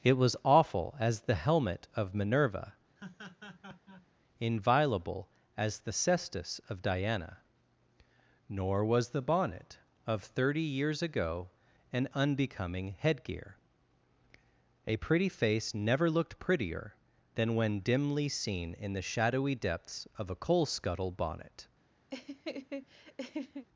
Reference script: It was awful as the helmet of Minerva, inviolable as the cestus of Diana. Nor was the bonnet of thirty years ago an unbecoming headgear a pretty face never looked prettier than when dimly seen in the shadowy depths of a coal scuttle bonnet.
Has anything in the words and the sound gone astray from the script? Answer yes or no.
yes